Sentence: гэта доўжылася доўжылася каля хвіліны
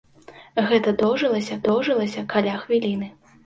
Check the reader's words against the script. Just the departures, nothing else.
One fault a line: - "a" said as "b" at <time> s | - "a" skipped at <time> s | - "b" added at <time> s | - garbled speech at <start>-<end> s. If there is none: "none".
none